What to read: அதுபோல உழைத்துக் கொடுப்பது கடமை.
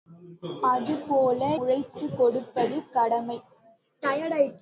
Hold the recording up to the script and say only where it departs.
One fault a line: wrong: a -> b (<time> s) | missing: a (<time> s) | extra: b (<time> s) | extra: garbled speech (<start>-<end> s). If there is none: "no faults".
no faults